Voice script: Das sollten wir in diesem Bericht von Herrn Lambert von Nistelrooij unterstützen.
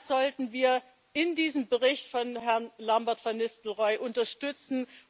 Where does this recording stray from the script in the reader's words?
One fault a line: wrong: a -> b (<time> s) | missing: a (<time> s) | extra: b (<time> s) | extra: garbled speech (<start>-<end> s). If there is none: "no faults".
no faults